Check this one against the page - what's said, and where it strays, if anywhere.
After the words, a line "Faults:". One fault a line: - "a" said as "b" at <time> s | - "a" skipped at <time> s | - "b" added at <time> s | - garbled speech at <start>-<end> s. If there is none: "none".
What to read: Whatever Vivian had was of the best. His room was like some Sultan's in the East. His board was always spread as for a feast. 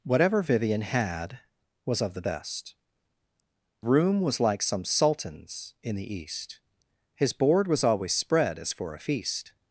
Whatever Vivian had was of the best. Room was like some Sultan's in the East. His board was always spread as for a feast.
Faults:
- "His" skipped at 2.8 s